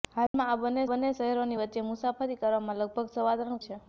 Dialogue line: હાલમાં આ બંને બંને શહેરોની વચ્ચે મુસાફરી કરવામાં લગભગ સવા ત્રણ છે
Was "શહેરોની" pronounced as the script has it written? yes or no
yes